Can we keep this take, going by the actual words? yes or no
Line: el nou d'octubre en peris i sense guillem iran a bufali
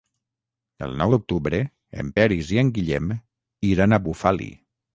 no